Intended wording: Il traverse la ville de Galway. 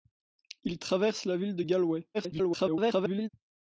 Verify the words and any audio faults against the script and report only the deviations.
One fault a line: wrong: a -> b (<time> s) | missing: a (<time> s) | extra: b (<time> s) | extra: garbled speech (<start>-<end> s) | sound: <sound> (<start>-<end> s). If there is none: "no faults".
extra: garbled speech (2.1-3.3 s)